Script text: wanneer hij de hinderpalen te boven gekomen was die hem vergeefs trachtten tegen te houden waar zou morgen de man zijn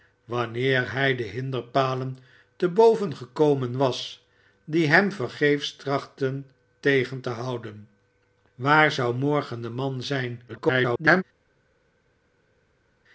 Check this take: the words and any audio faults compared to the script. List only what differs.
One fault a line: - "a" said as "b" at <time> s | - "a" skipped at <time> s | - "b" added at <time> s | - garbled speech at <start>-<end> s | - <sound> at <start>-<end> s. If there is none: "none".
- garbled speech at 10.5-11.2 s